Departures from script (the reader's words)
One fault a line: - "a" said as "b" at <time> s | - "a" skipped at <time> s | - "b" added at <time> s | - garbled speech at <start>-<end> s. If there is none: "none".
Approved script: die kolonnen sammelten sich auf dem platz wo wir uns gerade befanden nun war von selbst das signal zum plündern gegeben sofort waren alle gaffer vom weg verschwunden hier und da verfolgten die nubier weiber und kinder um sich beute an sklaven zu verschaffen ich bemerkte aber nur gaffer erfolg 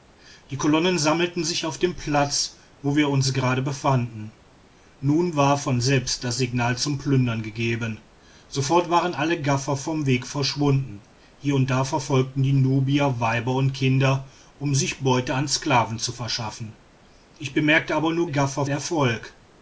none